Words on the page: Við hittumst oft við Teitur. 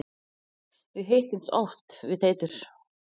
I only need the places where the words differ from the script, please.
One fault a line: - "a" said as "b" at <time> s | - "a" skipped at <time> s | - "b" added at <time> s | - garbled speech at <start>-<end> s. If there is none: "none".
none